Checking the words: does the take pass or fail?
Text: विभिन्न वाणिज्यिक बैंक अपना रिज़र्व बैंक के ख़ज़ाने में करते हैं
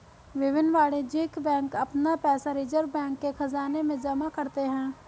fail